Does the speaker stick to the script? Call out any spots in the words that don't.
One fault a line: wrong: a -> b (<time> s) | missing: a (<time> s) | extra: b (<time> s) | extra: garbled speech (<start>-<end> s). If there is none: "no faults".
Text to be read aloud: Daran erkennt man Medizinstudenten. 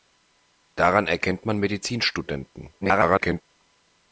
extra: garbled speech (2.8-3.4 s)